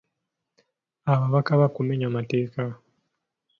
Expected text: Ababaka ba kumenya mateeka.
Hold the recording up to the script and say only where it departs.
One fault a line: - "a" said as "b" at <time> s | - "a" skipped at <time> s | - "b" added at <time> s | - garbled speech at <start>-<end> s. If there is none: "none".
none